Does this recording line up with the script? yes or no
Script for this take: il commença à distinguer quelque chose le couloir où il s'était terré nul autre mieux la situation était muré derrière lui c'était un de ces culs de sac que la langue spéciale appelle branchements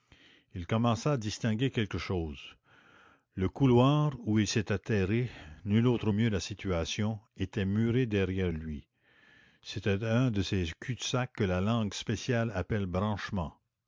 yes